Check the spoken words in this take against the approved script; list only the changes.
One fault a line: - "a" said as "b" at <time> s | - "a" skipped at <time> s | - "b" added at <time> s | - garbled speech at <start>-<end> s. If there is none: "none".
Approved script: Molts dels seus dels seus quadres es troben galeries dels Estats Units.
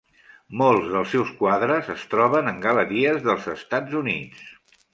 - "dels seus" skipped at 1.3 s
- "en" added at 2.5 s